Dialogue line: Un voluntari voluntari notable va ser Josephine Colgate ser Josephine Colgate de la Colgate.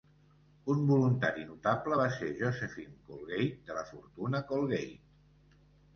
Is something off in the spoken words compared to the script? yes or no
yes